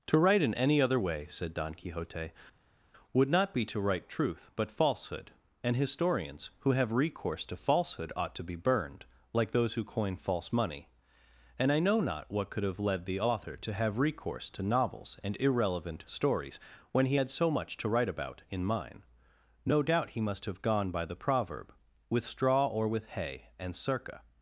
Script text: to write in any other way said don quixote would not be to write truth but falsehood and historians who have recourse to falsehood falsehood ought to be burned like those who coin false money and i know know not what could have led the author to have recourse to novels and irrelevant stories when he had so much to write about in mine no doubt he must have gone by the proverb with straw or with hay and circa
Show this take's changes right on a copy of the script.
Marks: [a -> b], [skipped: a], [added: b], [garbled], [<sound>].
to write in any other way said don quixote would not be to write truth but falsehood and historians who have recourse to falsehood [skipped: falsehood] ought to be burned like those who coin false money and i know [skipped: know] not what could have led the author to have recourse to novels and irrelevant stories when he had so much to write about in mine no doubt he must have gone by the proverb with straw or with hay and circa